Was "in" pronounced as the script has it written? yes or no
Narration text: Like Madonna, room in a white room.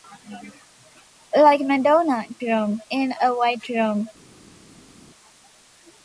yes